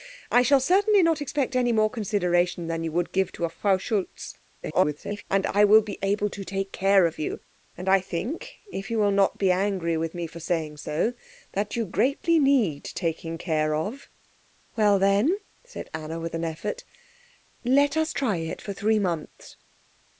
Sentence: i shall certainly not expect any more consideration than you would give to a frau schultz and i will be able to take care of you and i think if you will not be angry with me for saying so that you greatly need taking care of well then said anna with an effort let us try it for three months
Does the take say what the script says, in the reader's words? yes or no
no